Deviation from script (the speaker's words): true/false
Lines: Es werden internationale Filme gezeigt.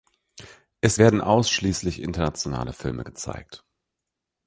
true